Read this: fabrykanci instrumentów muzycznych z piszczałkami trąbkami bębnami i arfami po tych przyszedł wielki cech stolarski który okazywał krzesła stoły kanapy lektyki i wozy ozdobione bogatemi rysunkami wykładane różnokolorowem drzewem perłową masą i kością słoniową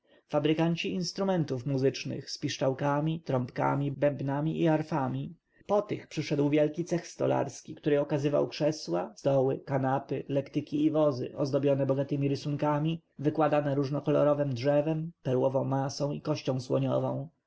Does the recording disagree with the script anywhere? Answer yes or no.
no